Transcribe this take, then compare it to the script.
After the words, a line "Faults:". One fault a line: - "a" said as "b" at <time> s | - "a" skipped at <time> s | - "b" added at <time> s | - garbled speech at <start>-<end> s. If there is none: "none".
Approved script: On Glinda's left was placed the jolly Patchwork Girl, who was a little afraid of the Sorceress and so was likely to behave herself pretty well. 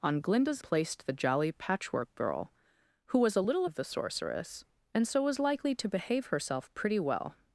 On Glinda's placed the jolly Patchwork Girl, who was a little of the Sorceress and so was likely to behave herself pretty well.
Faults:
- "left was" skipped at 0.6 s
- "afraid" skipped at 3.6 s